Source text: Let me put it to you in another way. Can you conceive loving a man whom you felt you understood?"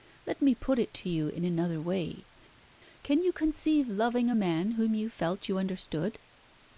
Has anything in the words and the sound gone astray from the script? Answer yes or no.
no